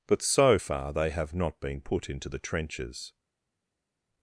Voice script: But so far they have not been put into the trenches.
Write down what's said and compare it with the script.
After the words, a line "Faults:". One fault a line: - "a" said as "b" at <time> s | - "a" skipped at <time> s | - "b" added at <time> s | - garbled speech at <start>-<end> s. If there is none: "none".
But so far they have not been put into the trenches.
Faults:
none